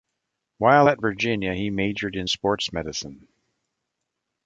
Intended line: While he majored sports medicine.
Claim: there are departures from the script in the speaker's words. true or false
true